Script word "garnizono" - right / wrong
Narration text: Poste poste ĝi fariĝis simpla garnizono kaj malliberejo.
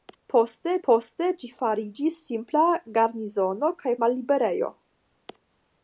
right